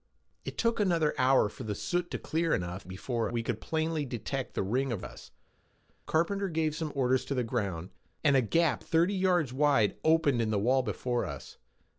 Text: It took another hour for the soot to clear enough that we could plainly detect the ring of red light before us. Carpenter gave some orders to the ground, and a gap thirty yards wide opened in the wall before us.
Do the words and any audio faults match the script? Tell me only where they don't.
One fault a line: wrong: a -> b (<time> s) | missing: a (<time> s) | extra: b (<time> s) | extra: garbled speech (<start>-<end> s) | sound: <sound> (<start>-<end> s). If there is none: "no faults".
wrong: that -> before (2.9 s)
missing: red light before (5.1 s)